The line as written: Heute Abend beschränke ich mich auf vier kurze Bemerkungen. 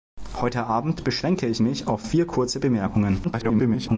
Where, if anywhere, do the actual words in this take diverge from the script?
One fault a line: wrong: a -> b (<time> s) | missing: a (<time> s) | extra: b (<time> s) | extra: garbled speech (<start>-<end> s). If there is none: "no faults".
extra: garbled speech (3.2-4.0 s)